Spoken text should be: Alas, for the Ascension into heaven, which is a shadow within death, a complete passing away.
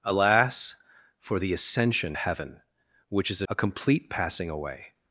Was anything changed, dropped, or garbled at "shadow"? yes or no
yes